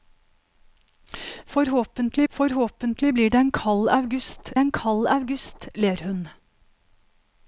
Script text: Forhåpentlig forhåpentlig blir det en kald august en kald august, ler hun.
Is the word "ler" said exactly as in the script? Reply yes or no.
yes